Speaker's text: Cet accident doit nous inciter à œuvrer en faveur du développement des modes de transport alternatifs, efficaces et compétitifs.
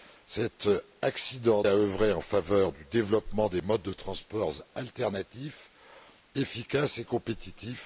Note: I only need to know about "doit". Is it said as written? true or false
false